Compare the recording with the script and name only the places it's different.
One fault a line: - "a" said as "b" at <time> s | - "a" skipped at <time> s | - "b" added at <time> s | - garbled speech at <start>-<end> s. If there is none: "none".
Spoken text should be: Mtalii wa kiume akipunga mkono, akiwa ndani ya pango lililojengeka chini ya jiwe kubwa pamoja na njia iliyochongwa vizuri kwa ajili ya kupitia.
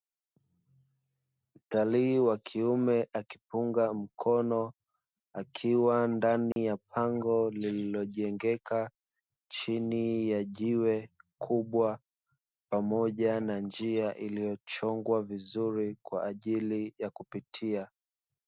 none